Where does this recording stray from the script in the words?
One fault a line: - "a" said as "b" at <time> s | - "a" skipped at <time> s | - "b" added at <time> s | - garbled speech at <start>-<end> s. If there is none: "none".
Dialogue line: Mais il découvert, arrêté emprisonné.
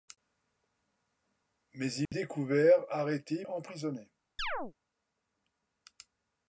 none